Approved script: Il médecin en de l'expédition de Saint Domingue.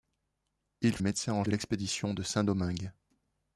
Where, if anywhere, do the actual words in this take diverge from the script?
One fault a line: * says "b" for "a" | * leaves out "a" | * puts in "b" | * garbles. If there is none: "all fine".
all fine